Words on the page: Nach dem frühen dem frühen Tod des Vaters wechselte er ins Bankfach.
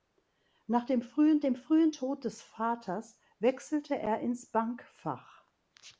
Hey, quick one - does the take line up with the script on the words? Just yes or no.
yes